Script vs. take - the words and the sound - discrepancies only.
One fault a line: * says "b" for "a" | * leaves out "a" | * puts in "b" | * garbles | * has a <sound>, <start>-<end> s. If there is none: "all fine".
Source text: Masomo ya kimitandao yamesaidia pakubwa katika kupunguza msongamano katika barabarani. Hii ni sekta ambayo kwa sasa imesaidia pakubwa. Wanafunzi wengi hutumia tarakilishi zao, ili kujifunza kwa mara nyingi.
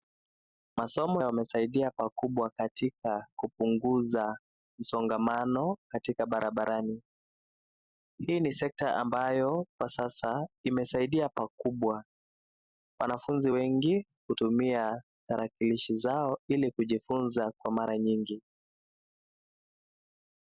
* leaves out "ya kimitandao"